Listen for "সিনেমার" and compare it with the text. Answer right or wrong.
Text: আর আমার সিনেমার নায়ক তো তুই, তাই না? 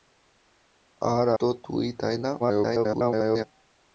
wrong